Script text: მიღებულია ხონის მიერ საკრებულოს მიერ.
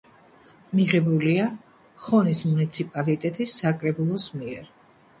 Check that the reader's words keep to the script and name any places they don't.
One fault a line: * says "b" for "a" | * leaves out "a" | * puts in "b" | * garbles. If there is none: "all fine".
* says "მუნიციპალიტეტის" for "მიერ"